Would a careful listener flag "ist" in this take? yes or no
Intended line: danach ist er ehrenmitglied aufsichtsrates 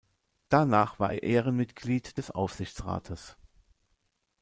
yes